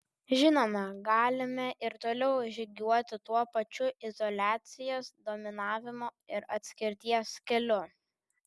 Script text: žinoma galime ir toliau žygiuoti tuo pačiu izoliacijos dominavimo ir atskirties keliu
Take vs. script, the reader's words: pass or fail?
pass